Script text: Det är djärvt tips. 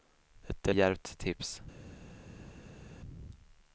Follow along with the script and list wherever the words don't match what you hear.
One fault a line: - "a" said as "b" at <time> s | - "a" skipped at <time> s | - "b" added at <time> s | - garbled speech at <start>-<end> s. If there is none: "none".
none